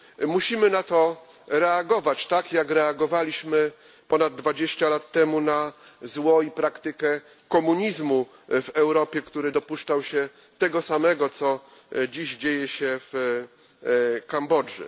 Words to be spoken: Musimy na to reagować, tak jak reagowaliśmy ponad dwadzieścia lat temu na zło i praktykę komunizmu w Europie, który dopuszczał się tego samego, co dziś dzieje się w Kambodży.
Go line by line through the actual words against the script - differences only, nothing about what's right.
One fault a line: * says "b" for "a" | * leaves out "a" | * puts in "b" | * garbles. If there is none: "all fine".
all fine